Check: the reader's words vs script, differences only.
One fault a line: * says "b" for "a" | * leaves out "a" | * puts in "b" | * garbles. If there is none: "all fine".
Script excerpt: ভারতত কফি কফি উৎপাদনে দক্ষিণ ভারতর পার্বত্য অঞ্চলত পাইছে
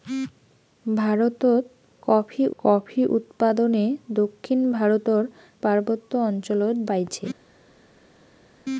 all fine